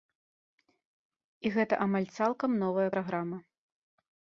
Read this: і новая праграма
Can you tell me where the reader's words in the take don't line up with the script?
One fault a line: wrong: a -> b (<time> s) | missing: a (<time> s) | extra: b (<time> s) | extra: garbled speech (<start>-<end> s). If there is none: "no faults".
extra: гэта амаль цалкам (1.6 s)